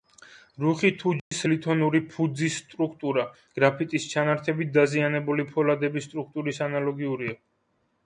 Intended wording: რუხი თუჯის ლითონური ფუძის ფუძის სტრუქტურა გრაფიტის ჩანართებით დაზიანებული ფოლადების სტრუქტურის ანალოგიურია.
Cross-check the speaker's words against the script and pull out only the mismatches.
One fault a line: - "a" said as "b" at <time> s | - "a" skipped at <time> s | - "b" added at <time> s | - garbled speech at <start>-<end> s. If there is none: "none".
- "ფუძის" skipped at 2.6 s